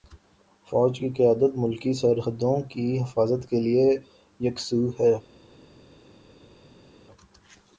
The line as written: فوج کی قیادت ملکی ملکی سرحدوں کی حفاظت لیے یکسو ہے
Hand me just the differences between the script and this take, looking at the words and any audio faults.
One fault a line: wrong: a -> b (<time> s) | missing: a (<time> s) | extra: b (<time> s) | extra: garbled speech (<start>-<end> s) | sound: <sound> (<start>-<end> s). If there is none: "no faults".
missing: ملکی (1.9 s)
extra: کے (3.5 s)